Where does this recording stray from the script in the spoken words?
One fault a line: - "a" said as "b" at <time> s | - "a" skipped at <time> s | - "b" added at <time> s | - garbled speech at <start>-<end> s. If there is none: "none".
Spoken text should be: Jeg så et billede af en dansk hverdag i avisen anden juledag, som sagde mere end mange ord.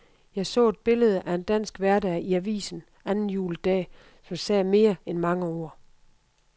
none